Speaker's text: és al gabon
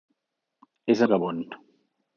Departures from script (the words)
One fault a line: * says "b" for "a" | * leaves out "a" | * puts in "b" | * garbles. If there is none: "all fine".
all fine